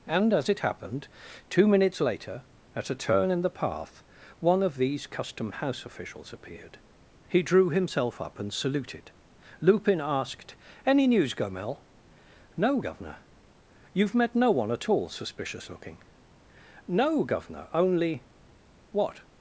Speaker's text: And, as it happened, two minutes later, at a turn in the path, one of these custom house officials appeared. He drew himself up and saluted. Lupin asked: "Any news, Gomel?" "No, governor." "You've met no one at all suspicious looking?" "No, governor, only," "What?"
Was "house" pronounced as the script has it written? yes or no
yes